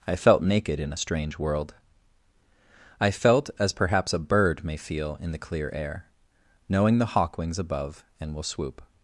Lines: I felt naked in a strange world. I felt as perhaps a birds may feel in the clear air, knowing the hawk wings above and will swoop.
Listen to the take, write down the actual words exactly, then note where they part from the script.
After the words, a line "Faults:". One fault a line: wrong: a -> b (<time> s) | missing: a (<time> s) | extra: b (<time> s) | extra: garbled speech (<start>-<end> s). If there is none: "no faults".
I felt naked in a strange world. I felt as perhaps a bird may feel in the clear air, knowing the hawk wings above and will swoop.
Faults:
wrong: birds -> bird (4.2 s)